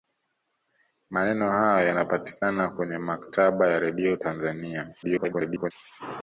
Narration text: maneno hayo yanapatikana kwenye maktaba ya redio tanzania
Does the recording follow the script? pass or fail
fail